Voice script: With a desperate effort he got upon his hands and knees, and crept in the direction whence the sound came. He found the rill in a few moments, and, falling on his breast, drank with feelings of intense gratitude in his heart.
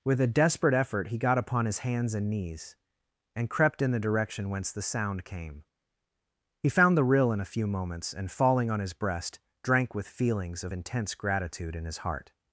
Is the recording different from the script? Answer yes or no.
no